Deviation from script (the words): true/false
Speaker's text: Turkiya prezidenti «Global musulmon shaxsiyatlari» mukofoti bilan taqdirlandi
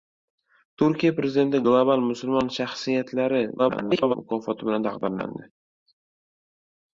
true